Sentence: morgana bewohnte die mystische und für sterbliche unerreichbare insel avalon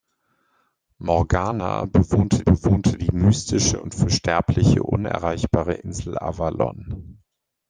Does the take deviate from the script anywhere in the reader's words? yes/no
yes